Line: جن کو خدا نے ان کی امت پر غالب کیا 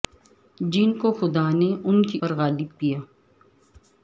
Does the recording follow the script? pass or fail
fail